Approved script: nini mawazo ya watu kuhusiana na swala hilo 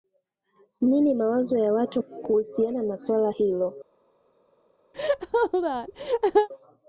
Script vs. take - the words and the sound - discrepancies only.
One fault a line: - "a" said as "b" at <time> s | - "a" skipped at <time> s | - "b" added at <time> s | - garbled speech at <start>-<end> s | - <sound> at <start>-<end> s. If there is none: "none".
- laugh at 4.9-6.5 s